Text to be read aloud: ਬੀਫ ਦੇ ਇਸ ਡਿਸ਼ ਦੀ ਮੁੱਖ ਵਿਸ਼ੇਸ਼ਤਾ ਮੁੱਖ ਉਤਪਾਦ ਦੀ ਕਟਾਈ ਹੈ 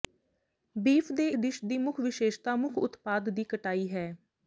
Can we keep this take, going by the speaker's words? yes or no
no